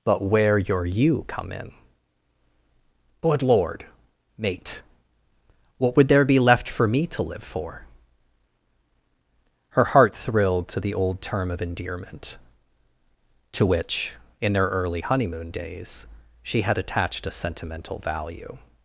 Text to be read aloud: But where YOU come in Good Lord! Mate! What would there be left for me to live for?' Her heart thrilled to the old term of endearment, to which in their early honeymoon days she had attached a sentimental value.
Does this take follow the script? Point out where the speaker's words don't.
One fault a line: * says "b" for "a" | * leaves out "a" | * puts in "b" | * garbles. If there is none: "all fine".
* puts in "your"